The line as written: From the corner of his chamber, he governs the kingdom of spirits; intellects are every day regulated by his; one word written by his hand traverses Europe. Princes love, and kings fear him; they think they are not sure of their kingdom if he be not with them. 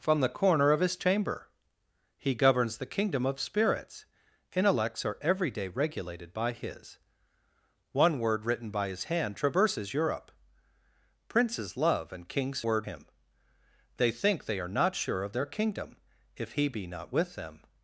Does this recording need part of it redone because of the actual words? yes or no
yes